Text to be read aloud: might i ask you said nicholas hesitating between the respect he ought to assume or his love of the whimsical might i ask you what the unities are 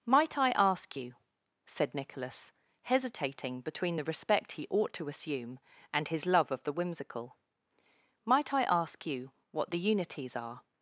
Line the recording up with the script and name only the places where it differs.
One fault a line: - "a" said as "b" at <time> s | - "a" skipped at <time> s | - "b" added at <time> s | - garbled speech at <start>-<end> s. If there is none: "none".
- "or" said as "and" at 5.9 s